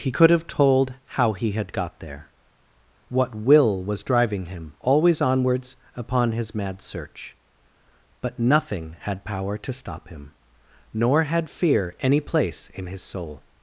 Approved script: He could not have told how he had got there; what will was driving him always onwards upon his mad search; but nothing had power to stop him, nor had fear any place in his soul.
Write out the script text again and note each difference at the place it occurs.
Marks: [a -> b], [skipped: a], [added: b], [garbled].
He could [skipped: not] have told how he had got there; what will was driving him always onwards upon his mad search; but nothing had power to stop him, nor had fear any place in his soul.